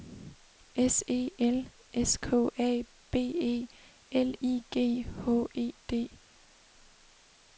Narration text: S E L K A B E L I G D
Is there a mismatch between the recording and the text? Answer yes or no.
yes